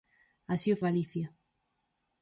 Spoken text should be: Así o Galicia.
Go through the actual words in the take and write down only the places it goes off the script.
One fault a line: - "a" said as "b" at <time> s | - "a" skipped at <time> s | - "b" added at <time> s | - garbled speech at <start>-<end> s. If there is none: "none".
none